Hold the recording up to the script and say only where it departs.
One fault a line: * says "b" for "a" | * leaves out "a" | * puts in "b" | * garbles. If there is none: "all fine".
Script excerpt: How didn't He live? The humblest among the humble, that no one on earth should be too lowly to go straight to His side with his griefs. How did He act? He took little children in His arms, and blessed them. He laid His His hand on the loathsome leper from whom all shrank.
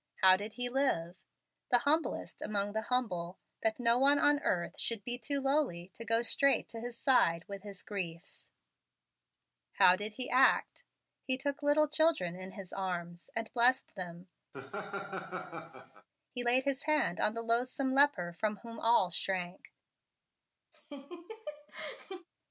* says "did" for "didn't"
* leaves out "His"